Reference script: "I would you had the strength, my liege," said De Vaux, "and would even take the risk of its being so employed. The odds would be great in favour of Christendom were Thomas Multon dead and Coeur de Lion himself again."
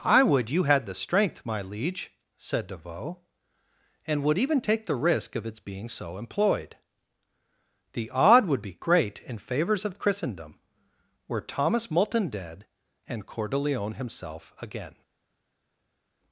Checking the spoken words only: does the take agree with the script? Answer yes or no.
no